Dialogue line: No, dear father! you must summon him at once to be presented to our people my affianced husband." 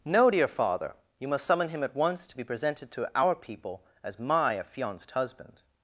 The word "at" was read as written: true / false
true